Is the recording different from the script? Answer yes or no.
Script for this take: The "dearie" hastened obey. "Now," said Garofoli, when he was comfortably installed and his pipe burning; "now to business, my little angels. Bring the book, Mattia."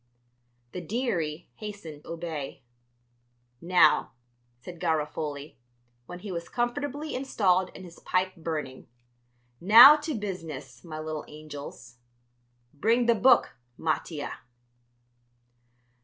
no